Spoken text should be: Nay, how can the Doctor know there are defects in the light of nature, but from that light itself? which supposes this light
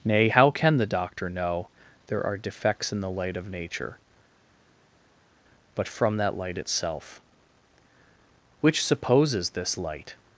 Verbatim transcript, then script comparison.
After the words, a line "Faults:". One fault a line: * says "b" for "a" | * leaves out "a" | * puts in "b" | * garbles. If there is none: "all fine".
Nay, how can the Doctor know there are defects in the light of nature, but from that light itself? which supposes this light
Faults:
all fine